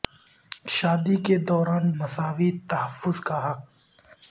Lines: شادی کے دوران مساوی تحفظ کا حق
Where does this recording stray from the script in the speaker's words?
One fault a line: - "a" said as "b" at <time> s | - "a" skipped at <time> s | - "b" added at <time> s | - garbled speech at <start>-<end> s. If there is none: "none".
none